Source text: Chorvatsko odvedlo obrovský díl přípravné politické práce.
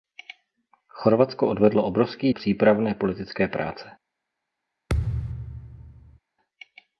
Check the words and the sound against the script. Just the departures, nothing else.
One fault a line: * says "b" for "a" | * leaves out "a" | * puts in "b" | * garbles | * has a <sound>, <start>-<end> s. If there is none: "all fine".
* leaves out "díl"
* has a thud, 4.9-6.2 s